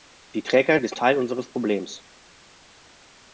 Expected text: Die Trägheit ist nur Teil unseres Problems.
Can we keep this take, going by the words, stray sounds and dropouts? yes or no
no